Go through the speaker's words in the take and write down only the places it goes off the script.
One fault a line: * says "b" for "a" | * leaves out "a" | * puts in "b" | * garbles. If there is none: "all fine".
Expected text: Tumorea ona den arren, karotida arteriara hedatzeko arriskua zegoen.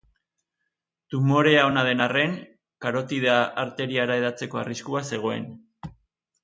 all fine